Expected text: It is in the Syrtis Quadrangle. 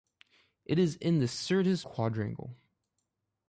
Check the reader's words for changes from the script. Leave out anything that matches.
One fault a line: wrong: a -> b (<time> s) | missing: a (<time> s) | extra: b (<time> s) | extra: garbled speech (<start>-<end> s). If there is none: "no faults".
no faults